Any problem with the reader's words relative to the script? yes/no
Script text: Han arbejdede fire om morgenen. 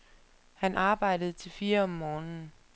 yes